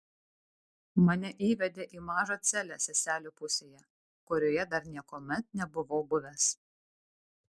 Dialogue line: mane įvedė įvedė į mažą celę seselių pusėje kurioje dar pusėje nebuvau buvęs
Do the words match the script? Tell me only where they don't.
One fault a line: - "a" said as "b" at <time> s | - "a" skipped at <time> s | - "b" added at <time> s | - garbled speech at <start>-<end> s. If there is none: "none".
- "įvedė" skipped at 1.9 s
- "pusėje" said as "niekuomet" at 5.0 s